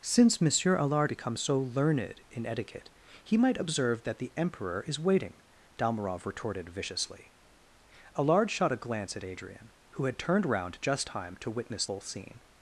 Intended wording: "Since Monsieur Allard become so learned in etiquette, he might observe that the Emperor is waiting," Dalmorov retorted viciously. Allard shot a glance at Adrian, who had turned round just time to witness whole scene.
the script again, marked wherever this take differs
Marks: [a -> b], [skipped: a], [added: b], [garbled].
"Since Monsieur Allard become so learned in etiquette, he might observe that the Emperor is waiting," Dalmorov retorted viciously. Allard shot a glance at Adrian, who had turned round just time to witness whole scene.